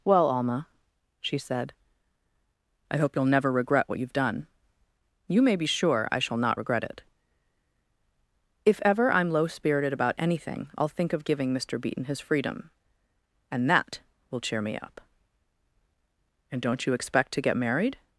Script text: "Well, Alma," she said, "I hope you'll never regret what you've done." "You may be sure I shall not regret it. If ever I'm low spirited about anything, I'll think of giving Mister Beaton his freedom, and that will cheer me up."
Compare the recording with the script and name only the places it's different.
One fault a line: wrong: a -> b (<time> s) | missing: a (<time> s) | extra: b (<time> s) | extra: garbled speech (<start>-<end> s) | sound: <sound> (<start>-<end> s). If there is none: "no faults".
extra: And don't you expect to get married (16.5 s)